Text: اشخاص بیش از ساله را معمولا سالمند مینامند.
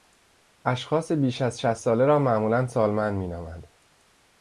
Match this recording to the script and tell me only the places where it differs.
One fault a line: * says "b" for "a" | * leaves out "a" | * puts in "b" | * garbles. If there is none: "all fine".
* puts in "شصت"